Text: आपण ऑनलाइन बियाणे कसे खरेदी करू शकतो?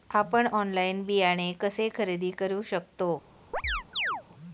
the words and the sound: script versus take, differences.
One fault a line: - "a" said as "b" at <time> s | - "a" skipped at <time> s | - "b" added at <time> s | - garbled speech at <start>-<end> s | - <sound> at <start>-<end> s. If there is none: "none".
- chirp at 3.5-4.2 s